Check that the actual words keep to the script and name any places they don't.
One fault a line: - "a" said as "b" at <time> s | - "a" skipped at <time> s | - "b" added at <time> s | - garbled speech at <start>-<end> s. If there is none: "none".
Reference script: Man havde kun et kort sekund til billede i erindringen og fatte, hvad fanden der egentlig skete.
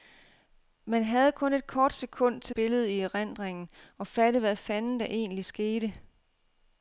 none